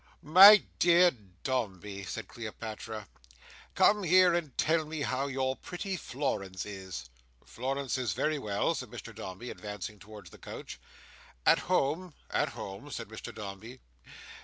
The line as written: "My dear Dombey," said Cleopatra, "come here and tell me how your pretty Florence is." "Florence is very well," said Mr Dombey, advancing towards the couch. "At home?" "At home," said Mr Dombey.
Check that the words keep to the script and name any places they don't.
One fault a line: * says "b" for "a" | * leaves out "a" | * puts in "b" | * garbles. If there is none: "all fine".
all fine